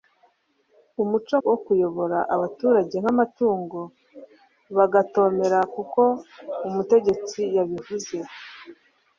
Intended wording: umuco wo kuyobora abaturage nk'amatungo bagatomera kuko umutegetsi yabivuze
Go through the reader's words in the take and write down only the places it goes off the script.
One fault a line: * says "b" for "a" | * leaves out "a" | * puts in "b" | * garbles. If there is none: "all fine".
all fine